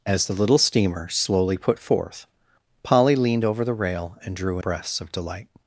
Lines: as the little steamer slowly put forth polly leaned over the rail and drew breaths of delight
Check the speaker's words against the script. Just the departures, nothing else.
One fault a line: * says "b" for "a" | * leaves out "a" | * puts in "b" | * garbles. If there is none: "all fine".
all fine